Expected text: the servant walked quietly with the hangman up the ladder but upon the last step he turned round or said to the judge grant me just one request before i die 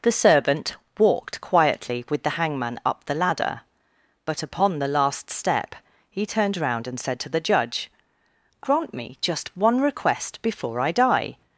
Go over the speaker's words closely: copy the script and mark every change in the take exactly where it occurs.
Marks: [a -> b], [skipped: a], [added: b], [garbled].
the servant walked quietly with the hangman up the ladder but upon the last step he turned round [or -> and] said to the judge grant me just one request before i die